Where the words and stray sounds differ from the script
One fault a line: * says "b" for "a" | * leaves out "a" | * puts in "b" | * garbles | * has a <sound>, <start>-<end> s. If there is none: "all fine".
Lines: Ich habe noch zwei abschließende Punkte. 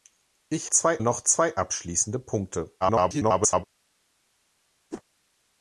* says "zwei" for "habe"
* garbles
* has a whoosh, 4.9-5.0 s